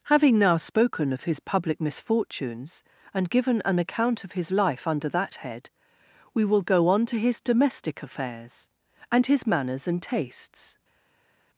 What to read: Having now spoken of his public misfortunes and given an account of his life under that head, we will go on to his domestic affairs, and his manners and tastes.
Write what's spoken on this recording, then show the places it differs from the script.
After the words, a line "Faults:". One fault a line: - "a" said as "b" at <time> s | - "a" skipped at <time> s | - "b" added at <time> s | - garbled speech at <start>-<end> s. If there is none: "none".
Having now spoken of his public misfortunes and given an account of his life under that head, we will go on to his domestic affairs, and his manners and tastes.
Faults:
none